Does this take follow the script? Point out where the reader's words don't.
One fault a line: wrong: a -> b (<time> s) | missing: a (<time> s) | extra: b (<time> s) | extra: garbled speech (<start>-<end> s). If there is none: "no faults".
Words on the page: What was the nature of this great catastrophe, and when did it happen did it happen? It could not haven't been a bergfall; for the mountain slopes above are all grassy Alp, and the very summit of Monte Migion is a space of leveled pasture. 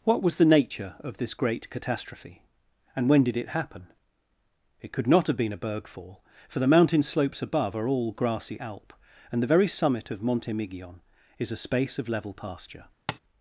missing: did (3.9 s)
missing: happen It (4.9 s)
wrong: haven't -> have (5.3 s)
wrong: leveled -> level (12.1 s)